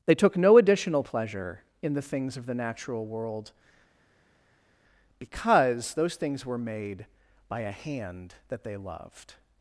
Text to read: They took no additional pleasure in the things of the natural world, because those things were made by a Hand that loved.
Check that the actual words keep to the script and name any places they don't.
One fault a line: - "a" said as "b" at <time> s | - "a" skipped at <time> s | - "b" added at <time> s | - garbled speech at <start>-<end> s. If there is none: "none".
- "they" added at 8.6 s